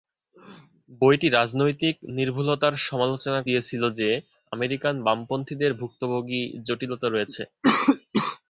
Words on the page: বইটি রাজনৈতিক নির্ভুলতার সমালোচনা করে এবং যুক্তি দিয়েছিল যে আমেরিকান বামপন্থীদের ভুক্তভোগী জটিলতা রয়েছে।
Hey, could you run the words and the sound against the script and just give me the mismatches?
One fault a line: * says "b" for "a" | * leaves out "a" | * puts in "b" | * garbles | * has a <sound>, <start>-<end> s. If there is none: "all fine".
* leaves out "করে এবং যুক্তি"